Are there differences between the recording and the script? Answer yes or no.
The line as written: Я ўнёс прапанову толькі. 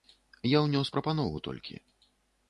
no